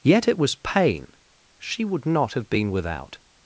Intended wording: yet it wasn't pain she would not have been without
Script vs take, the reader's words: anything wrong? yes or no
yes